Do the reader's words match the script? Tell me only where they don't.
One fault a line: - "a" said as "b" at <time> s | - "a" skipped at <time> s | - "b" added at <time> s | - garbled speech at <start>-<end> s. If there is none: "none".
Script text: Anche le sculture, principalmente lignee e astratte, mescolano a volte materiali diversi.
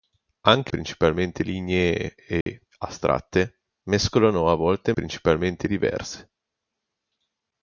- "le sculture" skipped at 0.7 s
- "materiali" said as "principalmente" at 4.9 s